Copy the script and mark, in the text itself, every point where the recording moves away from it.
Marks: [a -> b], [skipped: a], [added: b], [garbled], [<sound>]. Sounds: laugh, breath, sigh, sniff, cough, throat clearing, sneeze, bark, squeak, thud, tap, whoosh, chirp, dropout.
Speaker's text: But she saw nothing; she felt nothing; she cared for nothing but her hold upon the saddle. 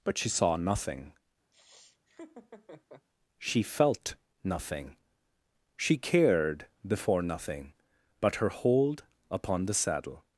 But she saw nothing; [laugh] she felt nothing; she cared [for -> before] nothing but her hold upon the saddle.